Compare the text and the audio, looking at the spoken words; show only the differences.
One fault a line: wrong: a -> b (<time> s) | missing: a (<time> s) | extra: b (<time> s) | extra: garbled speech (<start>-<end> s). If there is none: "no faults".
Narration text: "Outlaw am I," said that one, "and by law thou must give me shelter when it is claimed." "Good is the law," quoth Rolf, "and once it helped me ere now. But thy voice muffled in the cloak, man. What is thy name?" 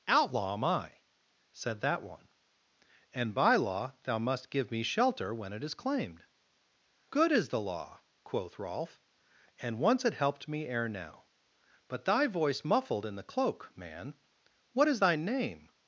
no faults